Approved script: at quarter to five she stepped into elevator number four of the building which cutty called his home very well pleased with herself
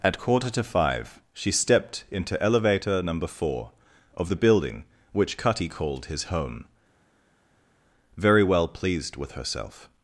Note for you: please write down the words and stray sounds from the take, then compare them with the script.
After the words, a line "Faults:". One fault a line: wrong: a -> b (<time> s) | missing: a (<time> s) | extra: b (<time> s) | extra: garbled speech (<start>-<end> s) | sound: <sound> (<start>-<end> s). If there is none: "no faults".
at quarter to five she stepped into elevator number four of the building which cutty called his home very well pleased with herself
Faults:
no faults